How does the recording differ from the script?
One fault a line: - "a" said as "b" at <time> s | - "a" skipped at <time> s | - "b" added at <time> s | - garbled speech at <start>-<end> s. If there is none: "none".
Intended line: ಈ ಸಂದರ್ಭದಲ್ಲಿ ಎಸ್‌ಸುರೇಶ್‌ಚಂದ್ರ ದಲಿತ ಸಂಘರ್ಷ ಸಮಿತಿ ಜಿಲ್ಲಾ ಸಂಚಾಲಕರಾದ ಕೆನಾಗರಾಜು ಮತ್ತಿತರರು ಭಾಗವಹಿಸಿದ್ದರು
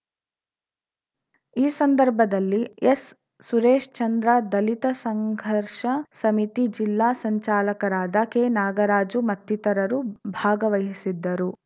none